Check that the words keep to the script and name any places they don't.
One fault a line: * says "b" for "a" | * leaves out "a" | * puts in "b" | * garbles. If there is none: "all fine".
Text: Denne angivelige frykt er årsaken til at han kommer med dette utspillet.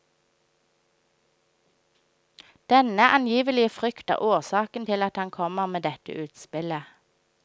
all fine